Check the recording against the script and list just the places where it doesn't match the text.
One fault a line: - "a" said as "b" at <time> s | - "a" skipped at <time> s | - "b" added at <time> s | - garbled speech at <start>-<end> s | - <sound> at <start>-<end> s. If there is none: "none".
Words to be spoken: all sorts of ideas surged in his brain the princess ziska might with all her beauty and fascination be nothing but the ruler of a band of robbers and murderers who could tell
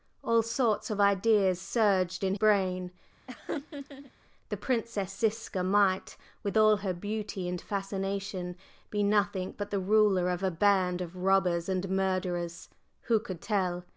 - "his" skipped at 2.4 s
- laugh at 3.3-4.1 s